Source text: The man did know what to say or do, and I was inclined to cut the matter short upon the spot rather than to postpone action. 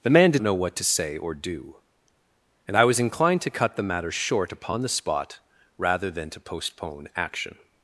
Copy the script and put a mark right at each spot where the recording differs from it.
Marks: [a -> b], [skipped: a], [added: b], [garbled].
The man did know what to say or do, and I was inclined to cut the matter short upon the spot rather than to postpone action.